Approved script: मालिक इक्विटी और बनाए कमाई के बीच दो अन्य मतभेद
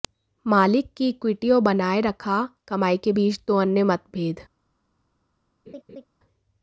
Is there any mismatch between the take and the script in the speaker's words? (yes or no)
yes